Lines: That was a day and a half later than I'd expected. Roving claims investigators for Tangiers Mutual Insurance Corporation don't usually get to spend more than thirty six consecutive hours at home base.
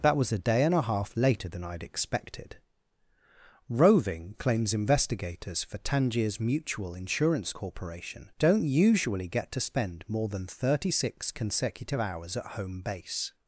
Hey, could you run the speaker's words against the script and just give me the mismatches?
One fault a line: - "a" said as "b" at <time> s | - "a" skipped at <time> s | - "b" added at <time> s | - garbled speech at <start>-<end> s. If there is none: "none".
none